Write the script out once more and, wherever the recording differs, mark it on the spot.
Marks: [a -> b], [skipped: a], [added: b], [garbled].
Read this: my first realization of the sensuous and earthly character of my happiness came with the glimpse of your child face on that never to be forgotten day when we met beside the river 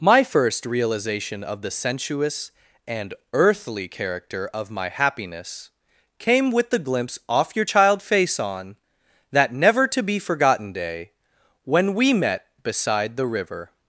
my first realization of the sensuous and earthly character of my happiness came with the glimpse [of -> off] your child face on that never to be forgotten day when we met beside the river